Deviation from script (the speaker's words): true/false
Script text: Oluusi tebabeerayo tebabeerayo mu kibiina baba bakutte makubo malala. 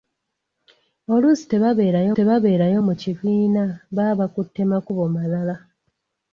false